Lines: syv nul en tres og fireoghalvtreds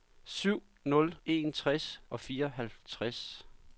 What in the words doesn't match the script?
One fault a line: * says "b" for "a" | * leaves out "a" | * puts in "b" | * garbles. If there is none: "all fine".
all fine